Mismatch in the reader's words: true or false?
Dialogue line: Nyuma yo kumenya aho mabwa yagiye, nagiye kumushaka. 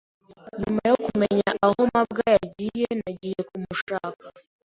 false